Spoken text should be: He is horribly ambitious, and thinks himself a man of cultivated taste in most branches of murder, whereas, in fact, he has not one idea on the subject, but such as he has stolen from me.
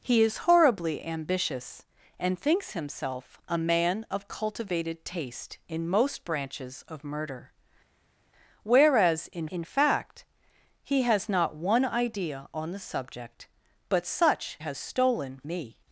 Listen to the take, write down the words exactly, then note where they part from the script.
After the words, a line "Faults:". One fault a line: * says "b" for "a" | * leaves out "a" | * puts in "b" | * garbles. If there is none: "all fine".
He is horribly ambitious, and thinks himself a man of cultivated taste in most branches of murder, whereas, in in fact, he has not one idea on the subject, but such has stolen me.
Faults:
* puts in "in"
* leaves out "as he"
* leaves out "from"